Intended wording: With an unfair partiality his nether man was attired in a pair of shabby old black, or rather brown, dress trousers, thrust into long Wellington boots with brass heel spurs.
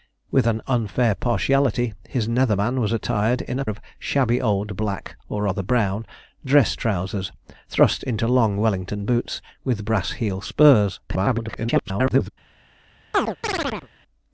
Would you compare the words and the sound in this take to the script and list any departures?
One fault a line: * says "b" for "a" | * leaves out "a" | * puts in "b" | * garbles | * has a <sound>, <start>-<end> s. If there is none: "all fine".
* leaves out "pair"
* garbles
* has a chirp, 13.1-13.9 s